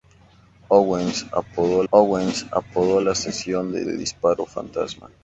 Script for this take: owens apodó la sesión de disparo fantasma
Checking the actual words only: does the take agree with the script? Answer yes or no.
no